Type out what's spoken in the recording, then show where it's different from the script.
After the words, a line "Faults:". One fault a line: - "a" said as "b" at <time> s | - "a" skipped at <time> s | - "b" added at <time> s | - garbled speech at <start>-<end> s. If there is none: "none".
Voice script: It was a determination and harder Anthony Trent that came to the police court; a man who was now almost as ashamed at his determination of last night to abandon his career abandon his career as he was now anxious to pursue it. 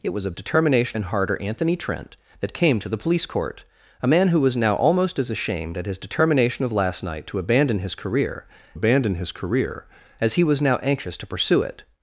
It was a determination and harder Anthony Trent that came to the police court; a man who was now almost as ashamed at his determination of last night to abandon his career abandon his career as he was now anxious to pursue it.
Faults:
none